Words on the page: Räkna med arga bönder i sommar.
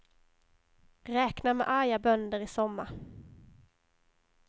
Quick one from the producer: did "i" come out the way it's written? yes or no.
yes